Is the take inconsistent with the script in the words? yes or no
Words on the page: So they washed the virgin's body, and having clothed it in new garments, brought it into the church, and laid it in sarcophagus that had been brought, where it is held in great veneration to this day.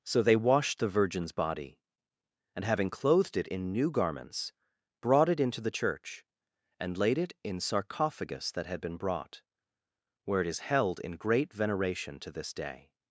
no